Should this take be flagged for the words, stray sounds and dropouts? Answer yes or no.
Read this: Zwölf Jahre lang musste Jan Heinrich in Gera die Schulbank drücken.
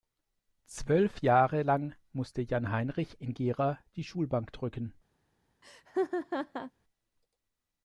yes